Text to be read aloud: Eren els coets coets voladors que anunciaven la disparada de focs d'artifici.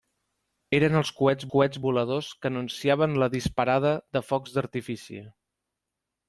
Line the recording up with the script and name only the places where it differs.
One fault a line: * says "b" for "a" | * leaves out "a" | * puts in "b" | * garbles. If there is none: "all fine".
all fine